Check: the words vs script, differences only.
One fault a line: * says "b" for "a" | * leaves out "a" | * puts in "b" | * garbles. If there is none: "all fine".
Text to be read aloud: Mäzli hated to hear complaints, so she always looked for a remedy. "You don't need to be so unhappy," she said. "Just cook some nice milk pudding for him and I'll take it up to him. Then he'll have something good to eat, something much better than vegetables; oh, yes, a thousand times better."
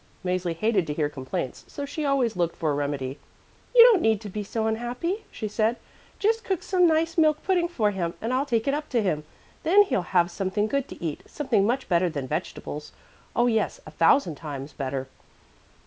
all fine